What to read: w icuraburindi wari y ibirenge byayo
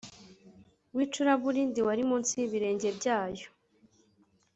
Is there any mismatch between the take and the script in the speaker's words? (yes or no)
yes